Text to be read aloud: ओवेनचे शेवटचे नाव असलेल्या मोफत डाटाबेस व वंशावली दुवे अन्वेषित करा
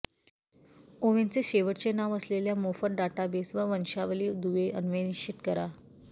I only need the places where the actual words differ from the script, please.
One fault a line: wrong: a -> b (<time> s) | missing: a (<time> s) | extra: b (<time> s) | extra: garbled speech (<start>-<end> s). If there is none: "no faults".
no faults